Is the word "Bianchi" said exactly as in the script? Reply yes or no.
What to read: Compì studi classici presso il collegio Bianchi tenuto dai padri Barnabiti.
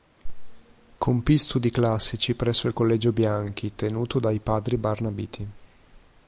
yes